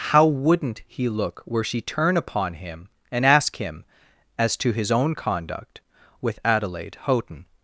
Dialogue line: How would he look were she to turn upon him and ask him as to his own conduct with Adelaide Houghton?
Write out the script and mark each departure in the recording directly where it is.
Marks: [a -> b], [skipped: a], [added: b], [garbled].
How [would -> wouldn't] he look were she [skipped: to] turn upon him and ask him as to his own conduct with Adelaide Houghton?